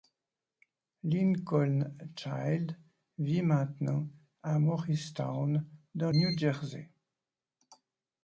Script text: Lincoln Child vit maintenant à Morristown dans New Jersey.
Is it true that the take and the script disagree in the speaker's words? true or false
false